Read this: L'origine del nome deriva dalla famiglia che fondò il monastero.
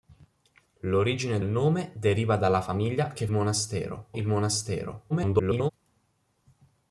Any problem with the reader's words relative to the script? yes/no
yes